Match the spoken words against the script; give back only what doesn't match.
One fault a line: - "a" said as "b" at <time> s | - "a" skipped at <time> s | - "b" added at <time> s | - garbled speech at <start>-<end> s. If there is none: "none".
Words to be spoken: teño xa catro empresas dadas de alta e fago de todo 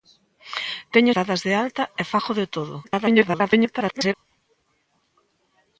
- "xa catro empresas" skipped at 1.1 s
- garbled speech at 2.8-4.1 s